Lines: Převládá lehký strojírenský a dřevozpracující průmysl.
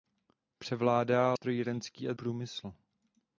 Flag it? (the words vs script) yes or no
yes